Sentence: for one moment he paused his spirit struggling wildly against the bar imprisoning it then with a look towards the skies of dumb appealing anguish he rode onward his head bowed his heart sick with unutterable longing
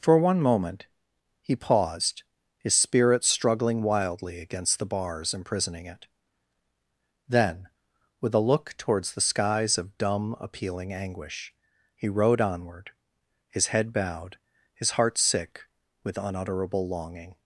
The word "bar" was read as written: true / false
false